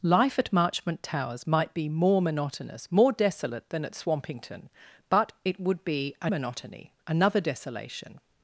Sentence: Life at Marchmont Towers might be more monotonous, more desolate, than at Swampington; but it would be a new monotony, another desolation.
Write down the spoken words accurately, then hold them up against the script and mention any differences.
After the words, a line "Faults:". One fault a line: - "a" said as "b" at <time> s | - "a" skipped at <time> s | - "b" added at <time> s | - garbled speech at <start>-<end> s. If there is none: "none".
Life at Marchmont Towers might be more monotonous, more desolate, than at Swampington; but it would be a monotony, another desolation.
Faults:
- "new" skipped at 6.3 s